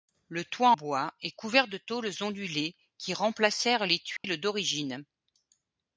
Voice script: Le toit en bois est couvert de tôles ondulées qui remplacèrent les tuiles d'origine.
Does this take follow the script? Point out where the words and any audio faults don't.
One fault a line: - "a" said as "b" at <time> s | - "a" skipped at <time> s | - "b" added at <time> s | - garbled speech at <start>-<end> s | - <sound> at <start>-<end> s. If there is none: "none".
- "en" skipped at 0.7 s
- dropout at 4.2-4.2 s